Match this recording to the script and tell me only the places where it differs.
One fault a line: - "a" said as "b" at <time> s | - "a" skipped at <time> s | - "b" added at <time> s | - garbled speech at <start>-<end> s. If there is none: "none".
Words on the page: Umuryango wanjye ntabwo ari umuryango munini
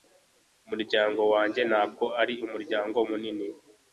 none